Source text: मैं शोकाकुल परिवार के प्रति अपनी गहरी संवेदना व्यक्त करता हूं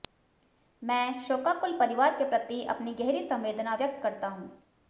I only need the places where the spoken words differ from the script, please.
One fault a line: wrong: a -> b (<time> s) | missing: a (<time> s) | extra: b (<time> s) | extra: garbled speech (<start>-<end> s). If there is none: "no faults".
no faults